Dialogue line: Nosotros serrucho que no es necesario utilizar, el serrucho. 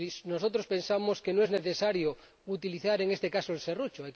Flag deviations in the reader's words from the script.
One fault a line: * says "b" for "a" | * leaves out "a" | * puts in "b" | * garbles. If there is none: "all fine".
* says "pensamos" for "serrucho"
* puts in "en este caso"